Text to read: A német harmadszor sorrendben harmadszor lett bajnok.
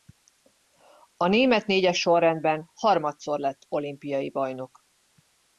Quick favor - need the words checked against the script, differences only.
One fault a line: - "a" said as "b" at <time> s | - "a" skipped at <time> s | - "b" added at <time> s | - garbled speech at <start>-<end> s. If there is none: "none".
- "harmadszor" said as "négyes" at 1.6 s
- "olimpiai" added at 3.7 s